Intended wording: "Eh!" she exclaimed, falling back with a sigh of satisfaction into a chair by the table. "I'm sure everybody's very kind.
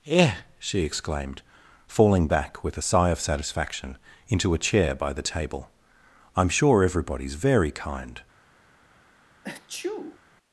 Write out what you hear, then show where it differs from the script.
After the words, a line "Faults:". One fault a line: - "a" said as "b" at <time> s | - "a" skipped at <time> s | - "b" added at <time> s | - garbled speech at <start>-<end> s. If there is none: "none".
"Eh!" she exclaimed, falling back with a sigh of satisfaction into a chair by the table. "I'm sure everybody's very kind.
Faults:
none